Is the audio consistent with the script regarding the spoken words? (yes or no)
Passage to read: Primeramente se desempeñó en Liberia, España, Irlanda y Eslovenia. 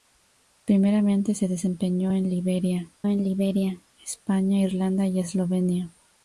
no